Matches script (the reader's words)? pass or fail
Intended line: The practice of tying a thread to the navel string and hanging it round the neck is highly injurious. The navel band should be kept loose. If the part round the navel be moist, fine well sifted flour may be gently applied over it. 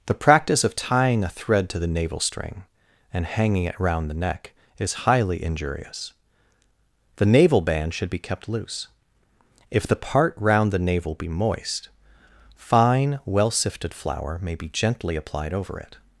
pass